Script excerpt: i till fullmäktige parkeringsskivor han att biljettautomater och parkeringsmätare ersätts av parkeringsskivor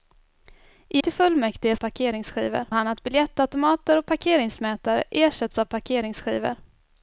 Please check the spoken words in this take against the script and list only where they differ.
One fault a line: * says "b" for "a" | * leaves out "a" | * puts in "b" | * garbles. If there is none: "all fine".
all fine